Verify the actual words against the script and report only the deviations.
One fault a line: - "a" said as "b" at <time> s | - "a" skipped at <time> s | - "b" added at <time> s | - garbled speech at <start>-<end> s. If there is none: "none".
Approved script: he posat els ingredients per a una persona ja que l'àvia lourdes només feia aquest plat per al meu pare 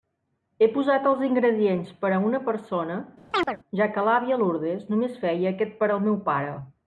- "plat" skipped at 5.8 s